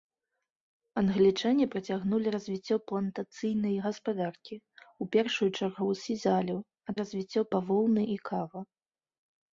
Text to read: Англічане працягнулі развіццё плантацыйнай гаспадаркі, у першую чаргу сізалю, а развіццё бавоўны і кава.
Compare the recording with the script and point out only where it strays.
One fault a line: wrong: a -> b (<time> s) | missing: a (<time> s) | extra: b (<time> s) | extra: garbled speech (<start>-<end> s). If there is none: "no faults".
no faults